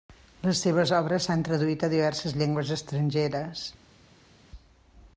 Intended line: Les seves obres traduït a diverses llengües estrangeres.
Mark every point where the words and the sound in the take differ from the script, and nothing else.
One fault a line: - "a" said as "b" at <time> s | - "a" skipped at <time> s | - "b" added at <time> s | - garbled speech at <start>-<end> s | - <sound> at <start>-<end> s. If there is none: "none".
- "s'han" added at 1.3 s